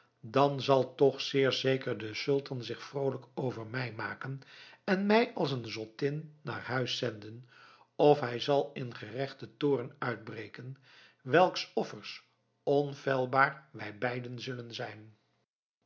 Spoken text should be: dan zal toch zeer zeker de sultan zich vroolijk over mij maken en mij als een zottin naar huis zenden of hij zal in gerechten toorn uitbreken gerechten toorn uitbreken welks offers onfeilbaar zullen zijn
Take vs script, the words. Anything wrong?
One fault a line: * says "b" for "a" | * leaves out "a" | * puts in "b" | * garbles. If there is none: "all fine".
* leaves out "gerechten toorn uitbreken"
* puts in "wij beiden"